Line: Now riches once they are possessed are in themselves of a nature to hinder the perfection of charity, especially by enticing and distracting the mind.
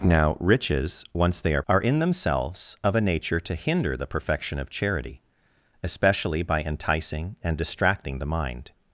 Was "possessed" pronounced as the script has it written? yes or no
no